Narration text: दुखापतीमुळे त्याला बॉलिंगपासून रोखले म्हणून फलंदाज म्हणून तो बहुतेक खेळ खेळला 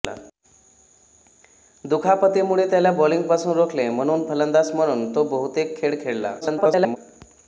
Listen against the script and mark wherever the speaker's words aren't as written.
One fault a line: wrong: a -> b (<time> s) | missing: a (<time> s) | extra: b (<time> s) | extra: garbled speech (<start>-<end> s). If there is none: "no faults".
extra: garbled speech (6.4-7.0 s)